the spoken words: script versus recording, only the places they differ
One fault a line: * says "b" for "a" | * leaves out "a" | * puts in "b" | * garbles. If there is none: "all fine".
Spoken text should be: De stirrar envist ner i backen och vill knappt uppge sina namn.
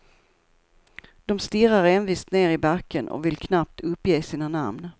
all fine